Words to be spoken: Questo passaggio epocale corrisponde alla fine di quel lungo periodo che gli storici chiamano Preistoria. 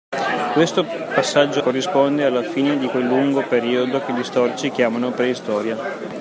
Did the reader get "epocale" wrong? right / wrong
wrong